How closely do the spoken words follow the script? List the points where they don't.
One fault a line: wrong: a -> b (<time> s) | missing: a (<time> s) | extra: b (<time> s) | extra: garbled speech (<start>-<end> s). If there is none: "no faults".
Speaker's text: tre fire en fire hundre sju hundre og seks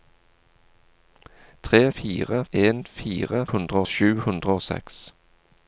no faults